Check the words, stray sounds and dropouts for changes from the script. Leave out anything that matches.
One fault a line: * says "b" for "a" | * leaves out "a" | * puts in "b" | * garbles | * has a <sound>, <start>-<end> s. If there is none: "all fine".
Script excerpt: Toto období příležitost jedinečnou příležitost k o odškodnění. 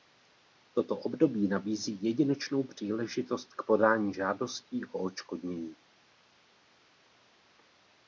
* says "nabízí" for "příležitost"
* puts in "podání žádostí"